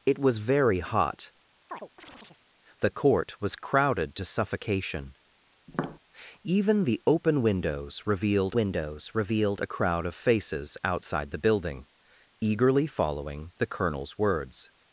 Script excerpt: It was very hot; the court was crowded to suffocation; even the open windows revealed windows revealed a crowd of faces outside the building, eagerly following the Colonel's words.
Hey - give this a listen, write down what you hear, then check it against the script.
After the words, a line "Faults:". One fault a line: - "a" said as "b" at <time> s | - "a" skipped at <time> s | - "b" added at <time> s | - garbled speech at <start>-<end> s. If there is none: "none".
It was very hot; the court was crowded to suffocation; even the open windows revealed windows revealed a crowd of faces outside the building, eagerly following the Colonel's words.
Faults:
none